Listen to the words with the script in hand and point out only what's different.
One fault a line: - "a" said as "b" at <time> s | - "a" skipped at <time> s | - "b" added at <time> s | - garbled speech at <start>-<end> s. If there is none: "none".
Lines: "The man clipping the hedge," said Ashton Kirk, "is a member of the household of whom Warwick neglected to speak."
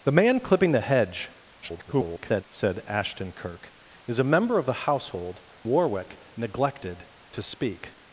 - garbled speech at 1.6-2.4 s
- "of whom" skipped at 5.4 s